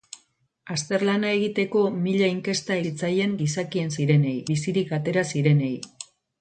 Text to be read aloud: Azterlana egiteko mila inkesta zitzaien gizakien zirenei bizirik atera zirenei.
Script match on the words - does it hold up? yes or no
yes